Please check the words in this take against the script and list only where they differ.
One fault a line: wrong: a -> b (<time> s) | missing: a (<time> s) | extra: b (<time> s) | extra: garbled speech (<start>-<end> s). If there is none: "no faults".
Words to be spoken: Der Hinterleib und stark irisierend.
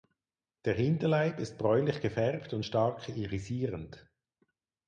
extra: ist bräunlich gefärbt (1.4 s)